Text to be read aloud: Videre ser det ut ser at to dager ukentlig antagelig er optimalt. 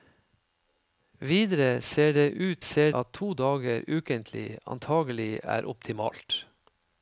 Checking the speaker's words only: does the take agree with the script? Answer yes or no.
yes